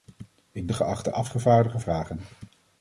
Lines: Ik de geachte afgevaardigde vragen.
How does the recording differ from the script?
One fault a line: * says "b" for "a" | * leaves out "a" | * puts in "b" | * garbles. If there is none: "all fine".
all fine